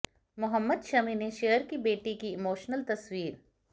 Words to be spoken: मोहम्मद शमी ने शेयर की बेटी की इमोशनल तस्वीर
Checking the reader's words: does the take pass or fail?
pass